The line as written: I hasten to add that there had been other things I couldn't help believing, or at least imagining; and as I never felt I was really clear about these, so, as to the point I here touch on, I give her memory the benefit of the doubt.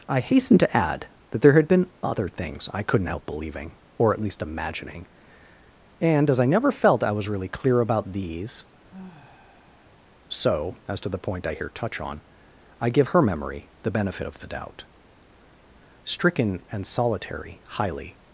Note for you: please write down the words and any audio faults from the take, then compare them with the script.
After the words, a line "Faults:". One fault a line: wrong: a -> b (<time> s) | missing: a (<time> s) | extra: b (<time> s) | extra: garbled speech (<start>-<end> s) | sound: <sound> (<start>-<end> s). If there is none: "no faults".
I hasten to add that there had been other things I couldn't help believing, or at least imagining; and as I never felt I was really clear about these, so, as to the point I here touch on, I give her memory the benefit of the doubt. Stricken and solitary, highly
Faults:
sound: sigh (8.9-10.1 s)
extra: Stricken and solitary highly (16.0 s)